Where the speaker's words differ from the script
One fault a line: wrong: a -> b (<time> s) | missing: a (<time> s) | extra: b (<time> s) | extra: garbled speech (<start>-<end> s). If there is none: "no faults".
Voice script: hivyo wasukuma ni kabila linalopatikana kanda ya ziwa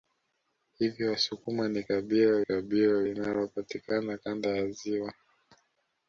extra: kabila (2.4 s)